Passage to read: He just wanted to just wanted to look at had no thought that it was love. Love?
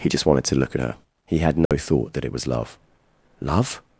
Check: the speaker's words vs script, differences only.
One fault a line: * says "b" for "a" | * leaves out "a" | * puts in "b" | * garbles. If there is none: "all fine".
* says "look at her He" for "just wanted to look at"